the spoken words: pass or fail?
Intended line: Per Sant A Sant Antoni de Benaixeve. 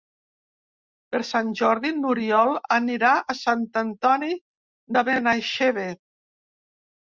fail